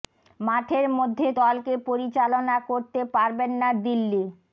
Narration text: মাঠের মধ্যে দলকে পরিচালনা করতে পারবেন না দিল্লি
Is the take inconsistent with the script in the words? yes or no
no